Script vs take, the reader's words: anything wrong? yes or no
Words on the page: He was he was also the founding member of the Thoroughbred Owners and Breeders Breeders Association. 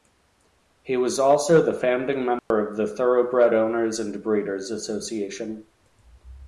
yes